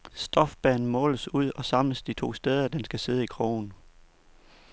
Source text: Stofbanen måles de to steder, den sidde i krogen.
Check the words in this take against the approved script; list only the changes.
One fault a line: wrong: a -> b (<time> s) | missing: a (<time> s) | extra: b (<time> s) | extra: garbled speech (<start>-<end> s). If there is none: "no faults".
extra: ud og samles (1.3 s)
extra: skal (2.8 s)